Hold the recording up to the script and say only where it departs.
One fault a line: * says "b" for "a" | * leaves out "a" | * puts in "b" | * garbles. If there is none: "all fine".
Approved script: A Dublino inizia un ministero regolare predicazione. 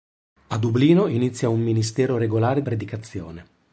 all fine